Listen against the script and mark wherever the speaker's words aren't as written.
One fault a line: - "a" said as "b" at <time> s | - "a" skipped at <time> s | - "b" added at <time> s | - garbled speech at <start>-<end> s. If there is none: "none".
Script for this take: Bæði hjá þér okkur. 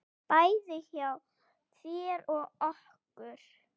- "og" added at 2.3 s